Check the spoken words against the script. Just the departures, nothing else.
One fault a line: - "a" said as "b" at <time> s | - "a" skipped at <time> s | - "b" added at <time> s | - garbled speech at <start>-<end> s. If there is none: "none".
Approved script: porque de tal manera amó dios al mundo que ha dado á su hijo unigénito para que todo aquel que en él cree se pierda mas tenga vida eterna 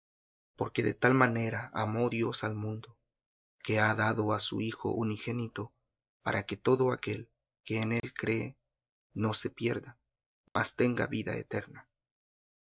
- "no" added at 9.1 s